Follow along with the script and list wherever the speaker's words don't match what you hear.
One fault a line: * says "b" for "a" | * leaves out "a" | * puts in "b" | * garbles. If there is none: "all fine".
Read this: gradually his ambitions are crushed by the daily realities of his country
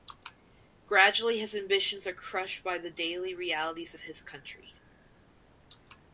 all fine